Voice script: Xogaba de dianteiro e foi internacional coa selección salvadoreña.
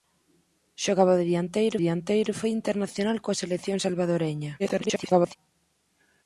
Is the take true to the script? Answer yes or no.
no